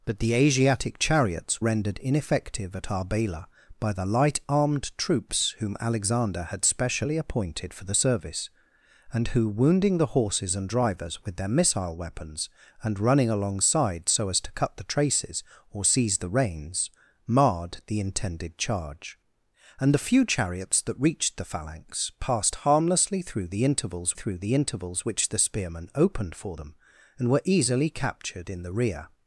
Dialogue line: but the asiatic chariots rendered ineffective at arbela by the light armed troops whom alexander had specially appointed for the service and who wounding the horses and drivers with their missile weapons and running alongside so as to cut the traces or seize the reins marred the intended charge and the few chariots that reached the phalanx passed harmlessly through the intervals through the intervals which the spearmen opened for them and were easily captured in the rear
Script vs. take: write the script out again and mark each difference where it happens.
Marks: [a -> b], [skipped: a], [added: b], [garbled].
but the asiatic chariots rendered ineffective at arbela by the light armed troops whom alexander had specially appointed for the service and who wounding the horses and drivers with their missile weapons and running alongside so as to cut the traces or seize the reins marred the intended charge and the few chariots that reached the phalanx passed harmlessly through the intervals through the intervals which the spearmen opened for them and were easily captured in the rear